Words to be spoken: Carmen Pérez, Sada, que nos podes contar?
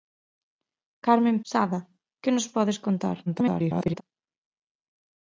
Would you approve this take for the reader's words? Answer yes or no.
no